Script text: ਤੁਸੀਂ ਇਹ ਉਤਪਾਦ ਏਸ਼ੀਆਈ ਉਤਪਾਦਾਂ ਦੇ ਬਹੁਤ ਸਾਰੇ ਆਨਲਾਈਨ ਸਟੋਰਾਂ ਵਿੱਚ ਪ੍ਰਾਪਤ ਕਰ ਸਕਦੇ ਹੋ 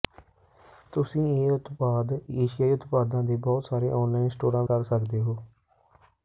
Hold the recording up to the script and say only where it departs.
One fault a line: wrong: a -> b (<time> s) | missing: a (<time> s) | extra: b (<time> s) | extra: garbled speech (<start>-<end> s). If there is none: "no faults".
missing: ਵਿੱਚ ਪ੍ਰਾਪਤ (4.6 s)